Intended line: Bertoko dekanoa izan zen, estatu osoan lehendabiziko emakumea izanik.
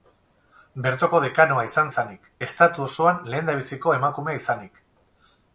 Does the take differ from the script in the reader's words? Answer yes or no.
yes